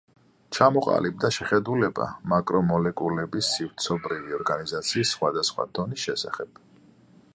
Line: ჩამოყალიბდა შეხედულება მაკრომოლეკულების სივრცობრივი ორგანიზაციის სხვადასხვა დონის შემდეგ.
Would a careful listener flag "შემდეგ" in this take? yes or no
yes